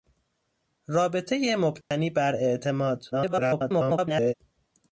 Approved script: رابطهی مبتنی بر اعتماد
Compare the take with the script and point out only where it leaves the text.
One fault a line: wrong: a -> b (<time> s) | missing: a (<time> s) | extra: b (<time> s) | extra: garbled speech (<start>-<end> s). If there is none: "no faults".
extra: garbled speech (3.1-4.3 s)